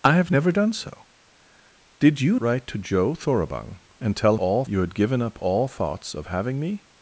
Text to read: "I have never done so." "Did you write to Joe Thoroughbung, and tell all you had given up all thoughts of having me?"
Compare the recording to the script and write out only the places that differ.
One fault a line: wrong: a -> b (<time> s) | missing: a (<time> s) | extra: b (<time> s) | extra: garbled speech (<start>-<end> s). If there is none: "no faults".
no faults